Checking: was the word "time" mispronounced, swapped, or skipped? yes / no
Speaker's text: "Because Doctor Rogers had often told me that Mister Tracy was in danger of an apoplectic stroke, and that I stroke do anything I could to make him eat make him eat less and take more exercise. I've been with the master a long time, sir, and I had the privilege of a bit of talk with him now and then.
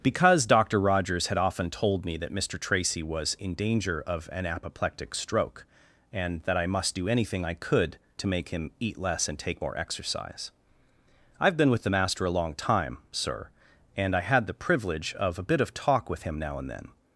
no